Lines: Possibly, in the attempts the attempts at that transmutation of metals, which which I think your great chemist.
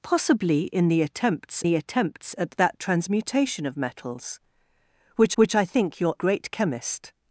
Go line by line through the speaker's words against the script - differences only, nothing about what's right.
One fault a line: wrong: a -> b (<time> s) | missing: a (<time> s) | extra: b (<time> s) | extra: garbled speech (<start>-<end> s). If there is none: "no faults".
no faults